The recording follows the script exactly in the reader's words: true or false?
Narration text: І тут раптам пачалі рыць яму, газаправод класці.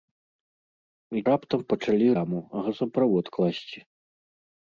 false